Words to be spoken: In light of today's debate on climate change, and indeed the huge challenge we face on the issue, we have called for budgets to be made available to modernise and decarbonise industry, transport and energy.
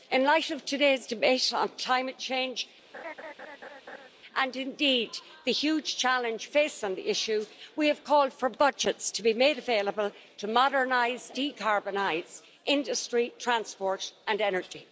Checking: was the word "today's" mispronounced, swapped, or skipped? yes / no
no